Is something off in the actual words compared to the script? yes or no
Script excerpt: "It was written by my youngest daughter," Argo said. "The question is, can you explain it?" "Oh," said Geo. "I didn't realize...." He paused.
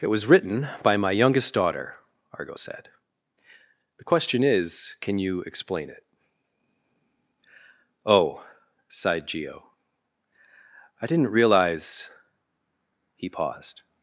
yes